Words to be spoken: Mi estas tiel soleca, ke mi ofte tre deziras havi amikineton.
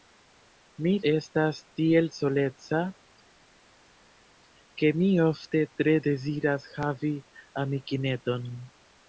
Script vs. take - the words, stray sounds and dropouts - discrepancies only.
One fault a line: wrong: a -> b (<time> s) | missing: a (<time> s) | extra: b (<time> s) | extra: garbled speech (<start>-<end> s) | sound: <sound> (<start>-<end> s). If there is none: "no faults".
no faults